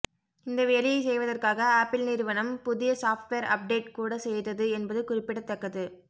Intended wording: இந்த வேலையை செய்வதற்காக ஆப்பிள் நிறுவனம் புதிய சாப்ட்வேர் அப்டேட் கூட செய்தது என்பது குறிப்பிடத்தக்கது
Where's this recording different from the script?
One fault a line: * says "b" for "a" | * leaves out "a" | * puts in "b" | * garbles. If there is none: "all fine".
all fine